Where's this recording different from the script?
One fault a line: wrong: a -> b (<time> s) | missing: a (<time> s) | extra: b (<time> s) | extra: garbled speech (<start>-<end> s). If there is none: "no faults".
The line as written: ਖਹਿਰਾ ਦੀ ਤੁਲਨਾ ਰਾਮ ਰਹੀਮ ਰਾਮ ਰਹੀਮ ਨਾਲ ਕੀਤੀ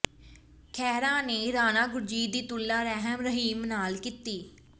extra: ਨੇ ਰਾਣਾ ਗੁਰਜੀਤ (1.2 s)
missing: ਰਾਮ ਰਹੀਮ (3.6 s)